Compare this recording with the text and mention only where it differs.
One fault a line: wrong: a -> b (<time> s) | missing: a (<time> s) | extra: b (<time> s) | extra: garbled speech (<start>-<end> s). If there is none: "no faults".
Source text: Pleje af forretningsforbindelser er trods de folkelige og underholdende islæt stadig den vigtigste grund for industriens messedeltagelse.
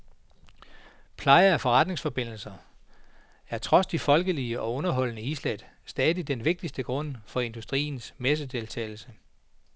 no faults